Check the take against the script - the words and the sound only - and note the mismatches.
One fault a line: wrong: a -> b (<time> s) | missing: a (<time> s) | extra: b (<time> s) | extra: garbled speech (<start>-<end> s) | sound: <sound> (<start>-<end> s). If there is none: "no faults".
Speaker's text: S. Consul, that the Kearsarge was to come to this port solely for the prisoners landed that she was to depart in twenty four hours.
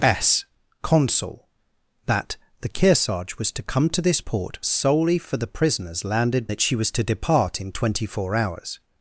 no faults